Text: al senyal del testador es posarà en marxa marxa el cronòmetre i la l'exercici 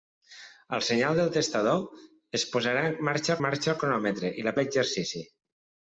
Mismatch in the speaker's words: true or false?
false